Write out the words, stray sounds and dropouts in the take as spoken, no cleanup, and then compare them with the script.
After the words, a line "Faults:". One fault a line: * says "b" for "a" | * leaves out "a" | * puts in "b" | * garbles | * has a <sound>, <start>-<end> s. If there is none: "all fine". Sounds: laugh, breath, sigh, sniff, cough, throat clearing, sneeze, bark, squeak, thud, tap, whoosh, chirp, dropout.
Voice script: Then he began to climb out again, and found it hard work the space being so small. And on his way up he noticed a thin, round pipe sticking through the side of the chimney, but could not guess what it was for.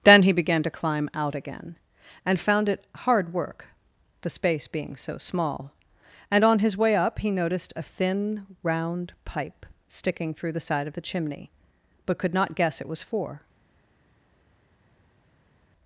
Then he began to climb out again, and found it hard work the space being so small. And on his way up he noticed a thin, round pipe sticking through the side of the chimney, but could not guess it was for.
Faults:
* leaves out "what"